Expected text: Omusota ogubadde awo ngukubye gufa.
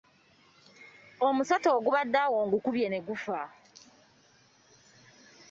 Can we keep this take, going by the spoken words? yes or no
no